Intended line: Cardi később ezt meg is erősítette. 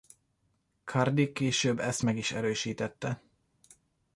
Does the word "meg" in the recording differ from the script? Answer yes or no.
no